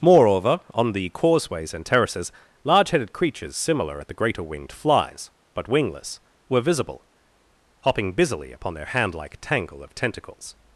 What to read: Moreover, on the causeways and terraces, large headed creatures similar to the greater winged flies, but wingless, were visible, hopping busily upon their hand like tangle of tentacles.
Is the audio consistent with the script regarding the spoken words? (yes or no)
no